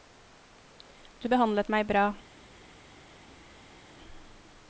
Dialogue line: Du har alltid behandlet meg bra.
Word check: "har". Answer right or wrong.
wrong